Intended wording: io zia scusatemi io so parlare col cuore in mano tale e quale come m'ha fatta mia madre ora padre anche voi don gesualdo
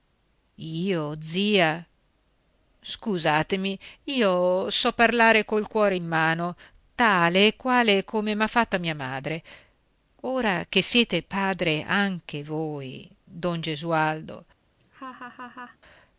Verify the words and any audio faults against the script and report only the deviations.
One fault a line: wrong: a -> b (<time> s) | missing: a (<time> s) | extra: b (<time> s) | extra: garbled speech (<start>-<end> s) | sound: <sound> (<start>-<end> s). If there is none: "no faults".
extra: che siete (10.7 s)
sound: laugh (14.8-15.8 s)